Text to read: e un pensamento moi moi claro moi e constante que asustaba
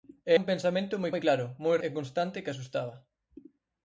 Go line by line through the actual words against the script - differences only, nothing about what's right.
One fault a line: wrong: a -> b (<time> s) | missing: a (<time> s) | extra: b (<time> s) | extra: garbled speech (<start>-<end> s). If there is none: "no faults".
no faults